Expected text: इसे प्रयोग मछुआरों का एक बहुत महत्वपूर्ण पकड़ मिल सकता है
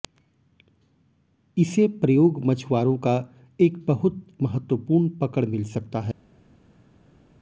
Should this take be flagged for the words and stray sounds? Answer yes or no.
no